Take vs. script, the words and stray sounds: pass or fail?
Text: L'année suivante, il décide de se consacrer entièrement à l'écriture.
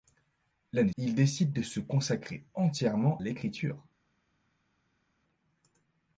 fail